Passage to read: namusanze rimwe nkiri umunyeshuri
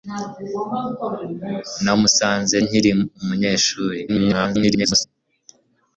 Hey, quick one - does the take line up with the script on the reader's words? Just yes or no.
no